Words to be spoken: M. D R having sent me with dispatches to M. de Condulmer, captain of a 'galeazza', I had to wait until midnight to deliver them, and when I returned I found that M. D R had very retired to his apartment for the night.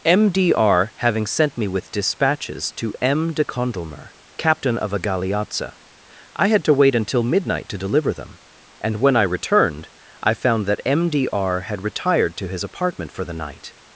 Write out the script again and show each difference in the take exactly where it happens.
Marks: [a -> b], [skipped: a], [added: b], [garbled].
M. D R having sent me with dispatches to M. de Condulmer, captain of a 'galeazza', I had to wait until midnight to deliver them, and when I returned I found that M. D R had [skipped: very] retired to his apartment for the night.